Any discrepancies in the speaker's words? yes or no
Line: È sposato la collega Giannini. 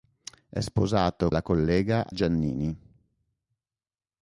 no